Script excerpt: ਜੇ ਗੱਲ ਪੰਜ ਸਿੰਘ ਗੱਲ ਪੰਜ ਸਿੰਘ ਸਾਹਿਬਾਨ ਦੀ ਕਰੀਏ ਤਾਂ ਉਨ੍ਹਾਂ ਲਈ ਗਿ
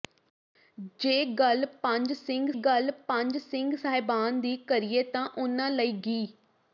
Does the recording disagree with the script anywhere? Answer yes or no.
no